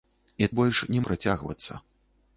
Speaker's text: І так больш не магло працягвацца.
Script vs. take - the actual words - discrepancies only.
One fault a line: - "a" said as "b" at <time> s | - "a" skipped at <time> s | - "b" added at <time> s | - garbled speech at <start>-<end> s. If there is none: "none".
- "так" skipped at 0.5 s
- "магло" skipped at 1.0 s